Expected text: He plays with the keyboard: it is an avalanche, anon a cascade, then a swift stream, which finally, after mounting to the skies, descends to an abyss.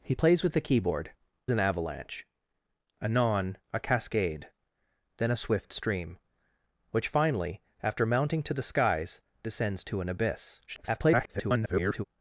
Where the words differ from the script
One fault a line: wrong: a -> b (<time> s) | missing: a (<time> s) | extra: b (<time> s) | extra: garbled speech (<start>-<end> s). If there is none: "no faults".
missing: it is (1.1 s)
extra: garbled speech (10.7-12.0 s)